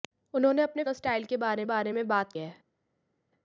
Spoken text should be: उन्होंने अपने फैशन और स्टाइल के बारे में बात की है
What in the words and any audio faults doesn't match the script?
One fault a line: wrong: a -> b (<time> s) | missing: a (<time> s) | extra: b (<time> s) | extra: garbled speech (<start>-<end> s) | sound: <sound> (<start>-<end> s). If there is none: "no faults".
missing: फैशन (0.8 s)
extra: बारे (1.6 s)
missing: की (2.3 s)